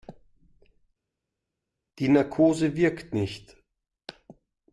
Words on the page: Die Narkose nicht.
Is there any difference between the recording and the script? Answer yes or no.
yes